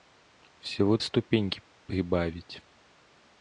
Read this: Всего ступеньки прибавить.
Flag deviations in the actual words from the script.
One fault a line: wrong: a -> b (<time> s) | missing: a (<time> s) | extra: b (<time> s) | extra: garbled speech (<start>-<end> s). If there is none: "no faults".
no faults